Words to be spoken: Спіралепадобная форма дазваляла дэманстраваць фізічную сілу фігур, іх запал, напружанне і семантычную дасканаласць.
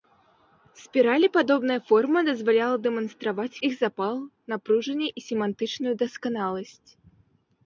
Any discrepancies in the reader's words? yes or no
yes